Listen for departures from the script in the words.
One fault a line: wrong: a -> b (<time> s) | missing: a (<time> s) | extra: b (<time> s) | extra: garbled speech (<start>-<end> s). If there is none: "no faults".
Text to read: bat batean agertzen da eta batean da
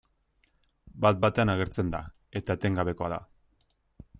wrong: batean -> etengabekoa (2.6 s)